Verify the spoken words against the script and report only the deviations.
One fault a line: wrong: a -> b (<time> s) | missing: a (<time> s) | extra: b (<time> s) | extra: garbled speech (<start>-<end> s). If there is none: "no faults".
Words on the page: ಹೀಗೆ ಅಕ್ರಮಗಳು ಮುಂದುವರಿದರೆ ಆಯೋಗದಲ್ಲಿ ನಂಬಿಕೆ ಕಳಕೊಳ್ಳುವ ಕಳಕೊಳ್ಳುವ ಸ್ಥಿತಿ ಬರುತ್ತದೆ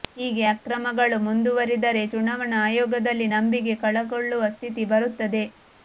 extra: ಚುನಾವಣಾ (2.1 s)
missing: ಕಳಕೊಳ್ಳುವ (4.4 s)